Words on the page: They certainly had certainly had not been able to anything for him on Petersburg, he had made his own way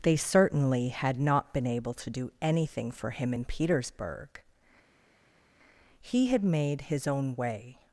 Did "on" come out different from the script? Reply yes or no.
yes